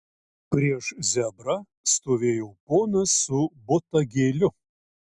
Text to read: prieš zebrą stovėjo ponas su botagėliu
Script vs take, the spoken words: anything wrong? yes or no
no